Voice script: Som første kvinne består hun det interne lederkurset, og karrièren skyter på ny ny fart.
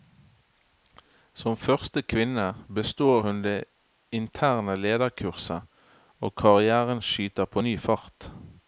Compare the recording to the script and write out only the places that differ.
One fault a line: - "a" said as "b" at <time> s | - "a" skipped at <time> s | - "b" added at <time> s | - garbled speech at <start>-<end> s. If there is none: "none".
- "ny" skipped at 7.8 s